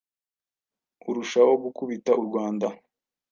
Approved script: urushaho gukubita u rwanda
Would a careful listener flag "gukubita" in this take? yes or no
no